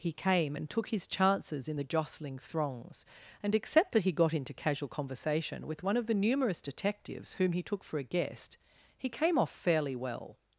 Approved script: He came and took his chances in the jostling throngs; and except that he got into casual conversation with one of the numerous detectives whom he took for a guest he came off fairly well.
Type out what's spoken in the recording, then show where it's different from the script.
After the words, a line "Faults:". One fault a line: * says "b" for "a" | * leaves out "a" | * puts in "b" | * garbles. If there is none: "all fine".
He came and took his chances in the jostling throngs; and except that he got into casual conversation with one of the numerous detectives whom he took for a guest he came off fairly well.
Faults:
all fine